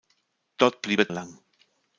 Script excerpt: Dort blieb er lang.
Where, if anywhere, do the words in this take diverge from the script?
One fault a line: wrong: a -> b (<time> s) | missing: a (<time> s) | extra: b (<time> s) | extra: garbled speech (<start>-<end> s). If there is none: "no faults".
no faults